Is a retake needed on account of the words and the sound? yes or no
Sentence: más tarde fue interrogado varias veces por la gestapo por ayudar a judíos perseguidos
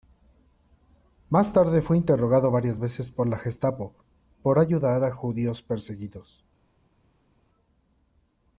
no